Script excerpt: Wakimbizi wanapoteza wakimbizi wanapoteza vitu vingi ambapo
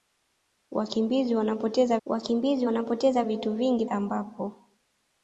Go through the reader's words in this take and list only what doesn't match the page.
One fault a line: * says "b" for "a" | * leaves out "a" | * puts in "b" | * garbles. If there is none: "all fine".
all fine